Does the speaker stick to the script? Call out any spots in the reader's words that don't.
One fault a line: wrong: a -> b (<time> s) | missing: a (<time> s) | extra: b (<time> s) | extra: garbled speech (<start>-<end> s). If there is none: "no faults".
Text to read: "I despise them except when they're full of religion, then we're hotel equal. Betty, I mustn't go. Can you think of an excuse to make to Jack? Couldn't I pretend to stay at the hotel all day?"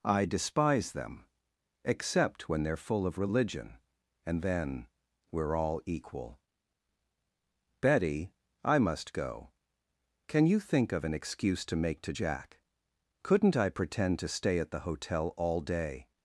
extra: and (4.3 s)
wrong: hotel -> all (5.6 s)
wrong: mustn't -> must (8.8 s)